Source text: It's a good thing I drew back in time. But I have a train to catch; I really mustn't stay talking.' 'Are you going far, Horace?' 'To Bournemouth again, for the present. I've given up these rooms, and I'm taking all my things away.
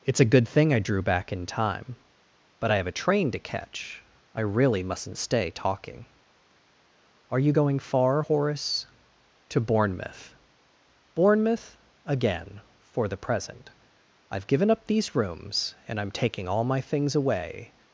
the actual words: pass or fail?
fail